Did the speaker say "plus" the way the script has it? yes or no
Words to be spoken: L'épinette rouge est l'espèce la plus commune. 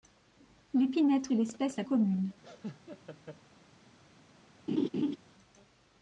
no